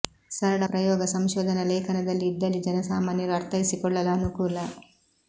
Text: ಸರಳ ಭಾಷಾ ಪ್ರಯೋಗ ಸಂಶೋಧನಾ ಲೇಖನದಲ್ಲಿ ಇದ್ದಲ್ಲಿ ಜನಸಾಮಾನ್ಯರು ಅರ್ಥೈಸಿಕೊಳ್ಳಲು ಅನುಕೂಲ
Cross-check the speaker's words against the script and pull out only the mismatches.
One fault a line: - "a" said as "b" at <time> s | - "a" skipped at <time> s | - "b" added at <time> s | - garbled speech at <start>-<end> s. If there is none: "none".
- "ಭಾಷಾ" skipped at 0.7 s